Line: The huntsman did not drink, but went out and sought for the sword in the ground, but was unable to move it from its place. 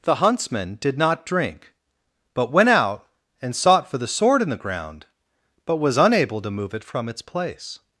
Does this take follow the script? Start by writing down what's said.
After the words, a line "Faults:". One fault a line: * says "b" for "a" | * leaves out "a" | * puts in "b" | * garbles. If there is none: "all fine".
The huntsman did not drink, but went out and sought for the sword in the ground, but was unable to move it from its place.
Faults:
all fine